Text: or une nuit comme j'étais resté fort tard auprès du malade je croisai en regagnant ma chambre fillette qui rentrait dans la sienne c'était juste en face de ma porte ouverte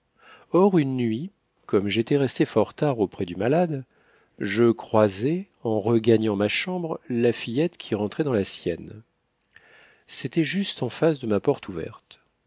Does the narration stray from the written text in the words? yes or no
yes